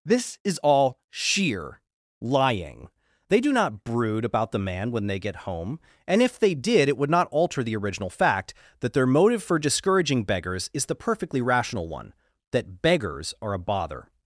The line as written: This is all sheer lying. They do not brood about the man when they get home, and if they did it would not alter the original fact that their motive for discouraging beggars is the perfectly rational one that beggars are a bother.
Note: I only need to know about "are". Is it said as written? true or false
true